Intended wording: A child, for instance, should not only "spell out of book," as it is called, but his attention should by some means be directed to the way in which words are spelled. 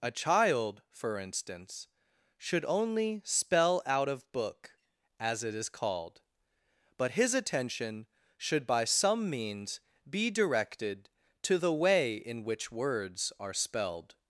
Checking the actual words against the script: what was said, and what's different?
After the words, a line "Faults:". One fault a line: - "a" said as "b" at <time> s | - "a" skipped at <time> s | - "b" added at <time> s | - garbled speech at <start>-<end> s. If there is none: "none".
A child, for instance, should only "spell out of book," as it is called, but his attention should by some means be directed to the way in which words are spelled.
Faults:
- "not" skipped at 2.6 s